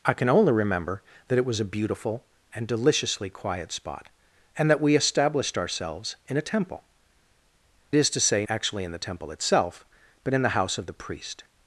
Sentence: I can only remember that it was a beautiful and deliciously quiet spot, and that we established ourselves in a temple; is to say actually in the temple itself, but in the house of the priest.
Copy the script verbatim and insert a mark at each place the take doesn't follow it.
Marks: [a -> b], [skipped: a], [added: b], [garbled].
I can only remember that it was a beautiful and deliciously quiet spot, and that we established ourselves in a temple; is to say actually in the temple itself, but in the house of the priest.